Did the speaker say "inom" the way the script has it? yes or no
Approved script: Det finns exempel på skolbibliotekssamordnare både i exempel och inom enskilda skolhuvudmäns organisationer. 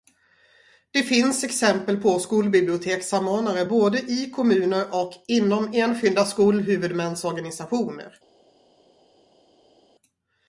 yes